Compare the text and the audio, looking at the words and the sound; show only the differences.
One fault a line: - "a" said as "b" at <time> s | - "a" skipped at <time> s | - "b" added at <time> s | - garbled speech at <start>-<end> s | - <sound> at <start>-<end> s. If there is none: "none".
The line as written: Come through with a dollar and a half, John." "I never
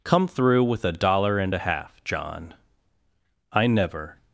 none